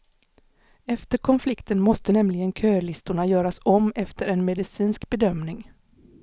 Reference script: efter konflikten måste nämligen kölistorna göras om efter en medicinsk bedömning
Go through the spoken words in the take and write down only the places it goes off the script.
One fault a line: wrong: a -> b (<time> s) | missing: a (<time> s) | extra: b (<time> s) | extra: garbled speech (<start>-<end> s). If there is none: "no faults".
no faults